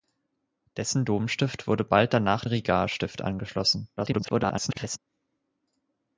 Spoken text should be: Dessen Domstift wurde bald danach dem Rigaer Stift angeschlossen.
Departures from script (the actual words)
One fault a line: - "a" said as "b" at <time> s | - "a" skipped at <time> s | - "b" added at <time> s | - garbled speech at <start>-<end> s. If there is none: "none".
- "dem" skipped at 2.4 s
- garbled speech at 4.0-5.0 s